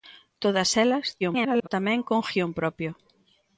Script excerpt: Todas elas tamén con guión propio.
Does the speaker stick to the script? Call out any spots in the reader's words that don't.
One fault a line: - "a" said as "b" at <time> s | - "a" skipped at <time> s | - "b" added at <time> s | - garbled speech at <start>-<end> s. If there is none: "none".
- garbled speech at 1.2-1.7 s